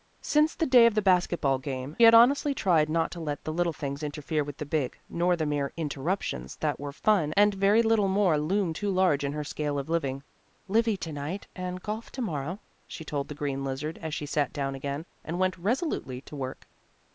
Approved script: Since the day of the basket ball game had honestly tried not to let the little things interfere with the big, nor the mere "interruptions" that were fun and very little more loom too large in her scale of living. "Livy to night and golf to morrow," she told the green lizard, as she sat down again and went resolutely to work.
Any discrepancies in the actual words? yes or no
no